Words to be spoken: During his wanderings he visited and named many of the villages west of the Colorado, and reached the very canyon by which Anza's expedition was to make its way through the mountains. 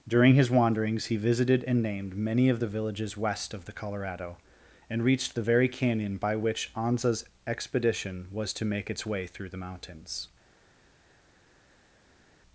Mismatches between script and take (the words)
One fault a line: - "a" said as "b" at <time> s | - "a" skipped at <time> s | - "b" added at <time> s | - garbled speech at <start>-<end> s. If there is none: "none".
none